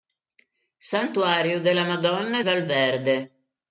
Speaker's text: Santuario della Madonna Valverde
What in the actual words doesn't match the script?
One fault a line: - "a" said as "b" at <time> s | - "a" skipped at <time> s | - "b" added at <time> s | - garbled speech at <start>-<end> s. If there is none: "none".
none